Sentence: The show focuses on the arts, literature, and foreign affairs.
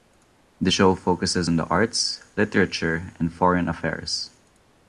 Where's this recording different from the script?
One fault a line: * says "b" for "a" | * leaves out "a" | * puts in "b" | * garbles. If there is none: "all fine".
all fine